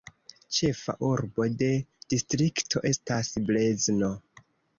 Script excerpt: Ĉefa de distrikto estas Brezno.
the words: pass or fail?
fail